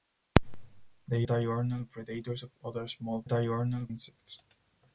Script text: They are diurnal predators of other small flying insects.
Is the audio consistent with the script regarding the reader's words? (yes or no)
no